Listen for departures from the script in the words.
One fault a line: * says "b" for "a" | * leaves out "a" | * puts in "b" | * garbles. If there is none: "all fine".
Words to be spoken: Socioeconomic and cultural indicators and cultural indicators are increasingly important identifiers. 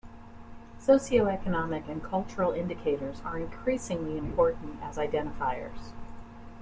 * leaves out "and cultural indicators"
* puts in "as"